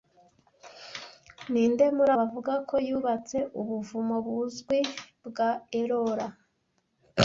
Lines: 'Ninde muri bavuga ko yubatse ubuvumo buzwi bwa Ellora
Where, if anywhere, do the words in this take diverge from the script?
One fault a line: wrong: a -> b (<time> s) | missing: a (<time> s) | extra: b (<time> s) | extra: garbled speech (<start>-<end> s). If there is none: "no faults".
no faults